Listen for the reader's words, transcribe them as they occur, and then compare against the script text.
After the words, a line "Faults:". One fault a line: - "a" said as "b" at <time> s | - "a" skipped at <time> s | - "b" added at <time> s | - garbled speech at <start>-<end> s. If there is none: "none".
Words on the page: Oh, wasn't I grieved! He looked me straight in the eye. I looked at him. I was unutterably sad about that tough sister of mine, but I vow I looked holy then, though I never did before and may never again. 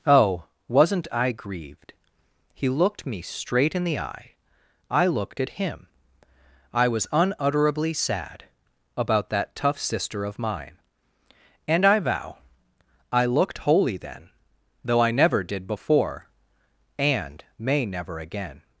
Oh, wasn't I grieved! He looked me straight in the eye. I looked at him. I was unutterably sad about that tough sister of mine, and I vow I looked holy then, though I never did before and may never again.
Faults:
- "but" said as "and" at 11.7 s